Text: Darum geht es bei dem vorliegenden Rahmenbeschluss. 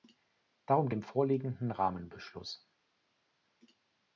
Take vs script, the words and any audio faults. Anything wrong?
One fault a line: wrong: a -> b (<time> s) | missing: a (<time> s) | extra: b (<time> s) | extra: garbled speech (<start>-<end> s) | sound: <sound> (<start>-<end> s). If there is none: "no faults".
missing: geht es bei (0.9 s)